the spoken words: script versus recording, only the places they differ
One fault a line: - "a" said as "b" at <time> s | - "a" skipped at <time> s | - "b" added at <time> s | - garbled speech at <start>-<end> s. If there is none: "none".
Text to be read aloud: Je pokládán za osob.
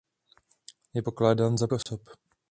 none